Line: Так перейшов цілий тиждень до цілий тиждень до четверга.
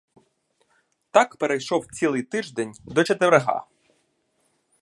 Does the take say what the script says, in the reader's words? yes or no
no